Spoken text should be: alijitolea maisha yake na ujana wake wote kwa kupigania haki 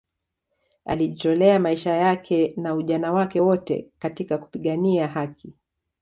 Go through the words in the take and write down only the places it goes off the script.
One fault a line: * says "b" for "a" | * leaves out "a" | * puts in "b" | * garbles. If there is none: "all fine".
* says "katika" for "kwa"